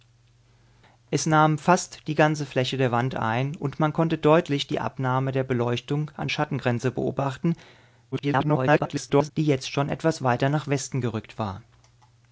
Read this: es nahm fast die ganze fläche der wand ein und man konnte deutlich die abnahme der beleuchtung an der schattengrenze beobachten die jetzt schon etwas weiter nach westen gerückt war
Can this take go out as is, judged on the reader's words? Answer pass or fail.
fail